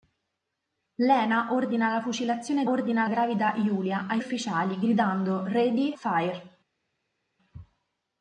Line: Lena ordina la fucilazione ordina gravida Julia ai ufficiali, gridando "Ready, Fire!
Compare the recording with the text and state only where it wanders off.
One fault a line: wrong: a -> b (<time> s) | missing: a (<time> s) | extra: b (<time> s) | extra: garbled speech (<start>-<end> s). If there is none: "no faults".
no faults